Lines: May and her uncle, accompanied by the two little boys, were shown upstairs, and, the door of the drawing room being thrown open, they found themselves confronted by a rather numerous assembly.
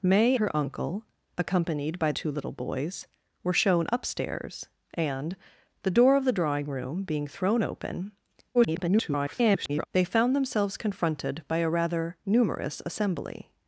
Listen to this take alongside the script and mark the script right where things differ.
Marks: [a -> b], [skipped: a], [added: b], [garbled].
May [skipped: and] her uncle, accompanied by [skipped: the] two little boys, were shown upstairs, and, the door of the drawing room being thrown open, [garbled] they found themselves confronted by a rather numerous assembly.